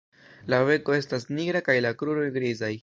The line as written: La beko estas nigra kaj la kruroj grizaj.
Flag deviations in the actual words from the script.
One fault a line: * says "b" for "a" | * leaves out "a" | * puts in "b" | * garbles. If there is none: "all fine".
all fine